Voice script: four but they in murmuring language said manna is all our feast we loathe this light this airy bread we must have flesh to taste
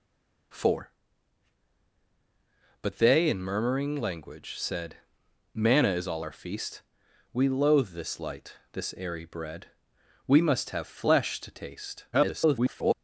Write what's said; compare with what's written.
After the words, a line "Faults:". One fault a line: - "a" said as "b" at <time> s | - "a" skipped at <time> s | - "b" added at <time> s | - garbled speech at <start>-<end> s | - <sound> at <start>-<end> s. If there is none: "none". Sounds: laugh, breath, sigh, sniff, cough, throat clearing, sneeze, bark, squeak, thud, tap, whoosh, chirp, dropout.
four but they in murmuring language said manna is all our feast we loathe this light this airy bread we must have flesh to taste [garbled]
Faults:
- garbled speech at 12.1-12.9 s